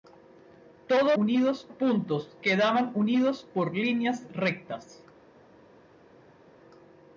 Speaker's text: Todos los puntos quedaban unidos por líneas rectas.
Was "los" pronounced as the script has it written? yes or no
no